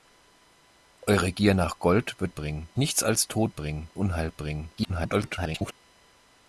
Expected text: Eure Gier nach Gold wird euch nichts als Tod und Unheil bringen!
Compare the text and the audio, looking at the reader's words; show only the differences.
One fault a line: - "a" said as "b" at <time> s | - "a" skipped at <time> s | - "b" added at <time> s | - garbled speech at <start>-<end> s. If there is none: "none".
- "euch" said as "bringen" at 2.3 s
- "und" said as "bringen" at 3.5 s
- garbled speech at 4.8-5.7 s